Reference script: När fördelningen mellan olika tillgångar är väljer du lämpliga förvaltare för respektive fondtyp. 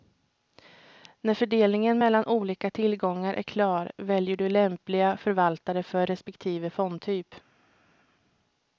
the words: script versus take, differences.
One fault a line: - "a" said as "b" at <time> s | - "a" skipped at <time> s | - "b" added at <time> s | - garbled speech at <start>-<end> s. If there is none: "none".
- "klar" added at 3.4 s